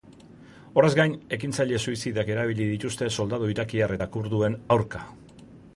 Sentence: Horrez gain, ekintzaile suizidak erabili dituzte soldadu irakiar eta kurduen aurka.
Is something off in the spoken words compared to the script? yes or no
no